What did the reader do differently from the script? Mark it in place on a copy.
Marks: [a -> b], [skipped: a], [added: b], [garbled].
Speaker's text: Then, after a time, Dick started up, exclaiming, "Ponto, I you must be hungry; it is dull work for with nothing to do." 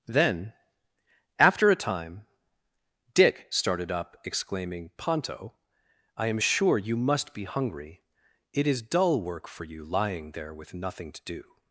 Then, after a time, Dick started up, exclaiming, "Ponto, I [added: am sure] you must be hungry; it is dull work for [added: you lying there] with nothing to do."